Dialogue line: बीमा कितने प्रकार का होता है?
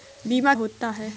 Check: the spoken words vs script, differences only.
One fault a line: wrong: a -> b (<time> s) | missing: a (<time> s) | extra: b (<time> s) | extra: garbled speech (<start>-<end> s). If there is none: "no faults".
missing: कितने प्रकार का (0.5 s)